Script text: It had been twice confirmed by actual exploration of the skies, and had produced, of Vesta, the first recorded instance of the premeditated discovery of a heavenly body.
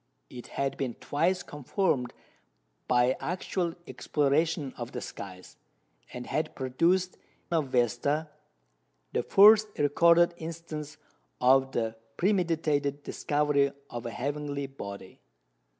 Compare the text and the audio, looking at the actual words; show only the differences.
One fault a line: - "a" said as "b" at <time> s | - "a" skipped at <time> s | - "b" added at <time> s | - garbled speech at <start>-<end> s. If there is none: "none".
none